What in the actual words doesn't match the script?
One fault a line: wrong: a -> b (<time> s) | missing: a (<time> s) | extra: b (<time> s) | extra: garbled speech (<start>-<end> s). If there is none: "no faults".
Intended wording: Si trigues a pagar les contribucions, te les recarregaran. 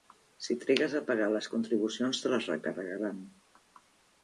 no faults